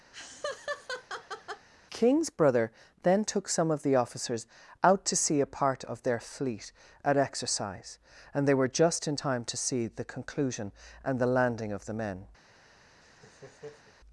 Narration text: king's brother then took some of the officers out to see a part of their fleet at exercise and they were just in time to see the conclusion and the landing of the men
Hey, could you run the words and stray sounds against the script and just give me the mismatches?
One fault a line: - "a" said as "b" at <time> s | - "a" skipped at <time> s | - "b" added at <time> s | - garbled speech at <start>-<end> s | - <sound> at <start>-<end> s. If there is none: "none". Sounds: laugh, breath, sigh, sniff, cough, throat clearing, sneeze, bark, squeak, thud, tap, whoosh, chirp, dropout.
- laugh at 0.1-1.7 s
- laugh at 13.0-13.9 s